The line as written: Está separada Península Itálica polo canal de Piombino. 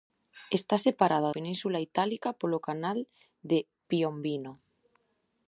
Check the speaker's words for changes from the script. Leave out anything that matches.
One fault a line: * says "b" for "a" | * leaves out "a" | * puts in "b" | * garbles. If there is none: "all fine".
all fine